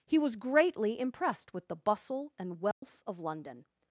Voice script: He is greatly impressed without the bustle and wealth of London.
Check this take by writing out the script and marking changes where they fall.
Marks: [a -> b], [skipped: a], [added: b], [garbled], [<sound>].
He [is -> was] greatly impressed [without -> with] the bustle and wealth [dropout] of London.